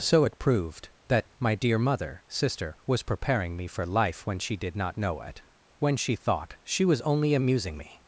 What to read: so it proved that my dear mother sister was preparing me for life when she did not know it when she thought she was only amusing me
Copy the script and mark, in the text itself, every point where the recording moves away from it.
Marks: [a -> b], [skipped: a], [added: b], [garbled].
so it proved that my dear mother sister was preparing me for life when she did not know it when she thought she was only amusing me